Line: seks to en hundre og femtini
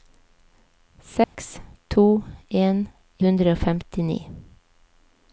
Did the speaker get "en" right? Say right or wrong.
right